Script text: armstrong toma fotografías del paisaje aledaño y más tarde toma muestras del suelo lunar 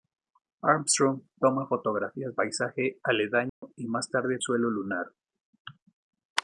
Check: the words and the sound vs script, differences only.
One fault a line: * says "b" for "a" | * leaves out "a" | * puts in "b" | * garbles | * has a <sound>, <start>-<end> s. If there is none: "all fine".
* leaves out "del"
* has a dropout, 3.5-3.6 s
* leaves out "toma muestras del"